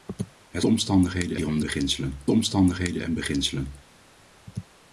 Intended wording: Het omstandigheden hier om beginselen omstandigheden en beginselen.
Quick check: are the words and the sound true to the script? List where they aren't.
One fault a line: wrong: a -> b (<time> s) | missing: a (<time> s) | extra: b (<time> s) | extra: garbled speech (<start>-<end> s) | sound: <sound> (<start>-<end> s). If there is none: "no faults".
no faults